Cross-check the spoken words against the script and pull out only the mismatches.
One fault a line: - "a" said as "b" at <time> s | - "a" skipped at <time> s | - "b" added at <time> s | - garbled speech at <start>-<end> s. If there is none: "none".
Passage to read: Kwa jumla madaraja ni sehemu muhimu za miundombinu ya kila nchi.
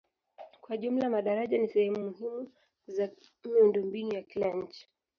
none